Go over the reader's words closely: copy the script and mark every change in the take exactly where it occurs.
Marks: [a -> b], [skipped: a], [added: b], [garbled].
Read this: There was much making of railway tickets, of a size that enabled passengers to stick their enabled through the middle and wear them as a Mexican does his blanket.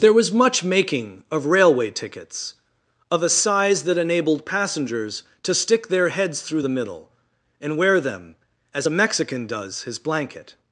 There was much making of railway tickets, of a size that enabled passengers to stick their [enabled -> heads] through the middle and wear them as a Mexican does his blanket.